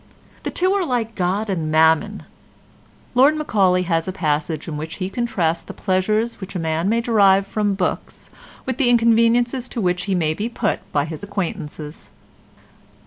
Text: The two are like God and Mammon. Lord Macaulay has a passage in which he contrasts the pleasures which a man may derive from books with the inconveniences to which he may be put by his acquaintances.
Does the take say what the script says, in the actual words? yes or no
yes